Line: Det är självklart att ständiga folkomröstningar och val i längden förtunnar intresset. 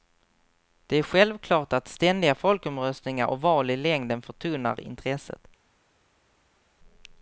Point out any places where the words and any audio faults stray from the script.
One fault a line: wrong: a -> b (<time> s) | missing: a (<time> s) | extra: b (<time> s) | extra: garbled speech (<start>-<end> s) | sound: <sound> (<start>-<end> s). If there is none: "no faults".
no faults